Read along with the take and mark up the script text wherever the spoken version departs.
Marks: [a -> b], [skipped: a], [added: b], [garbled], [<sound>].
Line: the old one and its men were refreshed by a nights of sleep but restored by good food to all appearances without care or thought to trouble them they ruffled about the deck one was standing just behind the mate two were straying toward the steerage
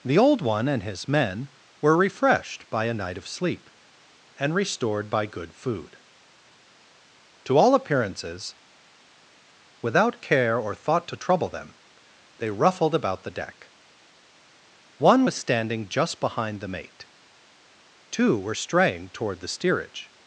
the old one and [its -> his] men were refreshed by a [nights -> night] of sleep [but -> and] restored by good food to all appearances without care or thought to trouble them they ruffled about the deck one was standing just behind the mate two were straying toward the steerage